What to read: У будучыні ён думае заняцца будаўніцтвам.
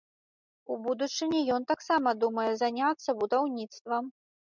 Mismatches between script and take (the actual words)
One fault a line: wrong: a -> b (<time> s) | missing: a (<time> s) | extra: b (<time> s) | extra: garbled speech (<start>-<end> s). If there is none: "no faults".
extra: таксама (1.7 s)